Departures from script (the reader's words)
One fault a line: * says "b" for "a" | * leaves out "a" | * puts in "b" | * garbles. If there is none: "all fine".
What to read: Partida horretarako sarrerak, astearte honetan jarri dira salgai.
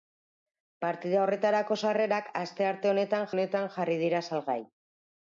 * puts in "honetan"